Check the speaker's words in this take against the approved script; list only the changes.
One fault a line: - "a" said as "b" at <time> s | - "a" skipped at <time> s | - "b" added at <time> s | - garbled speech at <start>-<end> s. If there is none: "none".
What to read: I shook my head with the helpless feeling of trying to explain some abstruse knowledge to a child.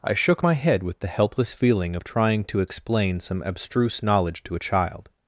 none